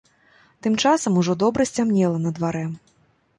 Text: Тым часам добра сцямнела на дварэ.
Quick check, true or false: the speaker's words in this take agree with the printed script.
false